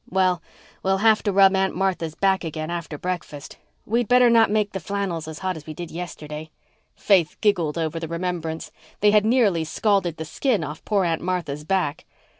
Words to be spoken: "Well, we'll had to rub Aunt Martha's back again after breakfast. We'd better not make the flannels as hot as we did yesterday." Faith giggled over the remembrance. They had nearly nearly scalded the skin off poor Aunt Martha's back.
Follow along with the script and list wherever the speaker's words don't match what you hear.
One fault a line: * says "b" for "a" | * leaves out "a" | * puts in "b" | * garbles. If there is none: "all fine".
* says "have" for "had"
* leaves out "nearly"